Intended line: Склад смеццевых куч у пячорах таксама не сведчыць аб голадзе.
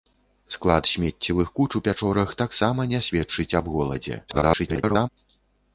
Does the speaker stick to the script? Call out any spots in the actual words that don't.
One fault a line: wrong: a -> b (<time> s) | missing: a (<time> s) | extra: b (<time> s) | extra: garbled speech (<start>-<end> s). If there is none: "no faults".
extra: garbled speech (4.3-5.1 s)